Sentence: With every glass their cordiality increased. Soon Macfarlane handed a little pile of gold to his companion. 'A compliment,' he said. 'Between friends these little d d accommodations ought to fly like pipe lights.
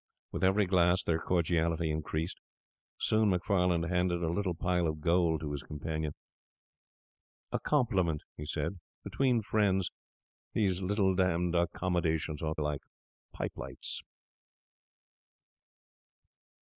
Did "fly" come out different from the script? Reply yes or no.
yes